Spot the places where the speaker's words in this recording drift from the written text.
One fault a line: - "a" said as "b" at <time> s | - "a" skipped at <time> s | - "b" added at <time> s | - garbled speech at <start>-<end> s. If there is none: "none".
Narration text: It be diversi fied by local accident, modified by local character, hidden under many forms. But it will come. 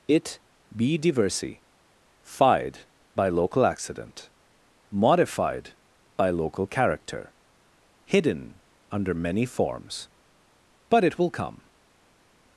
none